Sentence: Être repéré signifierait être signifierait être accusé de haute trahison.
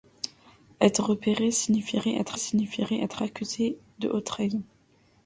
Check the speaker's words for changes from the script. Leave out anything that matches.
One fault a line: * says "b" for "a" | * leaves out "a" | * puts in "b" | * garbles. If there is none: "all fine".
all fine